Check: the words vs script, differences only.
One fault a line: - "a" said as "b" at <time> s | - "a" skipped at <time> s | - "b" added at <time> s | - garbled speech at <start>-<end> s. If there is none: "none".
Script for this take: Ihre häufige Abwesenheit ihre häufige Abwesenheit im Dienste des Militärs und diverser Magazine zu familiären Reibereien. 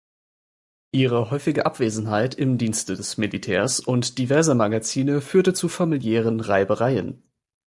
- "ihre häufige Abwesenheit" skipped at 2.3 s
- "führte" added at 5.2 s